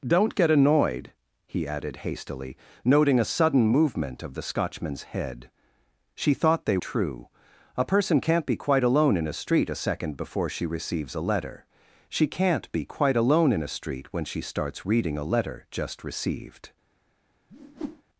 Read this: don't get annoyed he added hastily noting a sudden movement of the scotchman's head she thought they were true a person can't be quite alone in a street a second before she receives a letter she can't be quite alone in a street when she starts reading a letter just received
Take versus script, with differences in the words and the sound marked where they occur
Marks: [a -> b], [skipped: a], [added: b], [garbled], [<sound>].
don't get annoyed he added hastily noting a sudden movement of the scotchman's head she thought they [skipped: were] true a person can't be quite alone in a street a second before she receives a letter she can't be quite alone in a street when she starts reading a letter just received [whoosh]